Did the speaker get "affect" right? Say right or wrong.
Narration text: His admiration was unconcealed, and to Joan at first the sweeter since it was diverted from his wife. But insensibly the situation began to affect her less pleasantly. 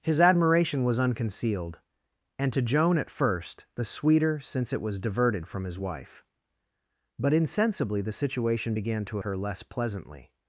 wrong